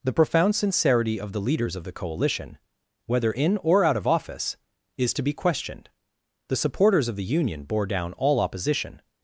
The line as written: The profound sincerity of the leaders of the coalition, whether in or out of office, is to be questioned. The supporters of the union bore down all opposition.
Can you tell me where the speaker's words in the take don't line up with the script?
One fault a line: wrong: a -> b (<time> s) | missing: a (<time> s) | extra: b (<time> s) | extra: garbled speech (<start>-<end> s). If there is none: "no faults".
no faults